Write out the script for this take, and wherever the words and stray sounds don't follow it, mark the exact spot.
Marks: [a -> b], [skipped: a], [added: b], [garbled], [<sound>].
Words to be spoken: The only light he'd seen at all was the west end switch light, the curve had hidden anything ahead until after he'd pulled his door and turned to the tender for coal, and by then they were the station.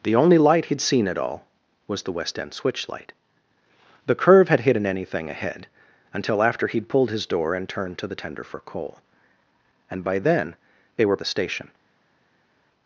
The only light he'd seen at all was the west end switch light, the curve had hidden anything ahead until after he'd pulled his door and turned to the tender for coal, and by then they were the station.